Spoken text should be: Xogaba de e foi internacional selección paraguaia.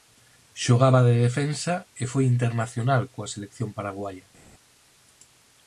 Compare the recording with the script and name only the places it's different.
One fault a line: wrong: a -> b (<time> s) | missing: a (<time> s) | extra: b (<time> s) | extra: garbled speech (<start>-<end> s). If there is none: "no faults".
extra: defensa (1.2 s)
extra: coa (3.1 s)